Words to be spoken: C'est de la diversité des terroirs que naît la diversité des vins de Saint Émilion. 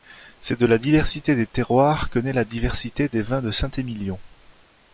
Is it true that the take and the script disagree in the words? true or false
false